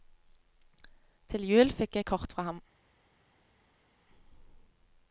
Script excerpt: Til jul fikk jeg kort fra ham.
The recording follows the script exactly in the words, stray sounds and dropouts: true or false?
true